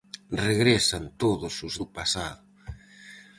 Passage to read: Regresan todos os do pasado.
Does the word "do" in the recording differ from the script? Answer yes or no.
no